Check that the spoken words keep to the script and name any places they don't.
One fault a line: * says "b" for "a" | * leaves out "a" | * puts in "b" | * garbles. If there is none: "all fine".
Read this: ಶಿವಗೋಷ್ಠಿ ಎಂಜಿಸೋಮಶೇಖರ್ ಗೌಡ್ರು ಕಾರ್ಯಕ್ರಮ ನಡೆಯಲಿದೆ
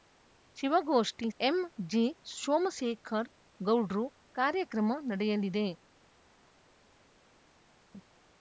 all fine